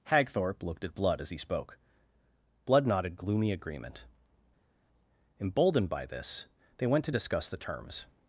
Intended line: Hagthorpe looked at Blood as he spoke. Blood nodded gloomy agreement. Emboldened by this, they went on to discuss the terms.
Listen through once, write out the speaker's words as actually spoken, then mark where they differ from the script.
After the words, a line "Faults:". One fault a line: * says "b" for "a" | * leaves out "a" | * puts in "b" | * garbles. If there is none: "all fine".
Hagthorpe looked at Blood as he spoke. Blood nodded gloomy agreement. Emboldened by this, they went to discuss the terms.
Faults:
* leaves out "on"